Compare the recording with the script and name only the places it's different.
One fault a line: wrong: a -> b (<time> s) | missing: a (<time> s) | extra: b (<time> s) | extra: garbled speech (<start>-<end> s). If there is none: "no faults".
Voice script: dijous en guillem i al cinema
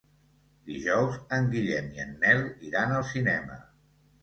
extra: en nel iran (2.1 s)